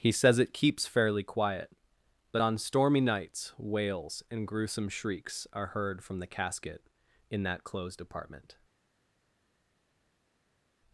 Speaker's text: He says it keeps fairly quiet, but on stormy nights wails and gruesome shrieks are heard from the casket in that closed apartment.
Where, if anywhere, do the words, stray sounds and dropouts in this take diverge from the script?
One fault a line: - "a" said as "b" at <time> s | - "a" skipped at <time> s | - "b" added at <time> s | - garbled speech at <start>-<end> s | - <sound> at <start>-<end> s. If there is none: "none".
none